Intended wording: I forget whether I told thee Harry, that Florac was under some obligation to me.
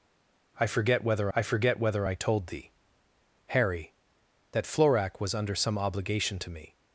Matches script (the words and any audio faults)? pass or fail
fail